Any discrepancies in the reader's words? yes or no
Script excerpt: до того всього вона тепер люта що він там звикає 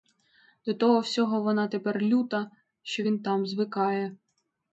no